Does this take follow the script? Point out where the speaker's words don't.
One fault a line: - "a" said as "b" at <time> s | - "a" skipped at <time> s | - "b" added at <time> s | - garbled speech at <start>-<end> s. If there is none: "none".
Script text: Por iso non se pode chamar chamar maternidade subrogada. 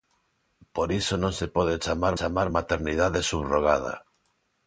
none